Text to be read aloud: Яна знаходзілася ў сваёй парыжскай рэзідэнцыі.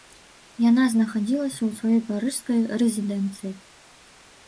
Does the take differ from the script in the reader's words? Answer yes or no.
no